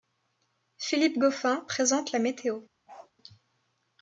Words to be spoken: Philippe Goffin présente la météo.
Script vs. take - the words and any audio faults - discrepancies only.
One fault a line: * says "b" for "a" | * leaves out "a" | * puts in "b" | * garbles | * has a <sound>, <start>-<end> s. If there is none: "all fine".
* has a bark, 2.9-3.1 s